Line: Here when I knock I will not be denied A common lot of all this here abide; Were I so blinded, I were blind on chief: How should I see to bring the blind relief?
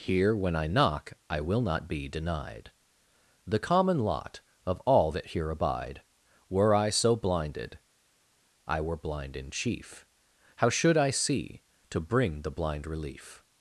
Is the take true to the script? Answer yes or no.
no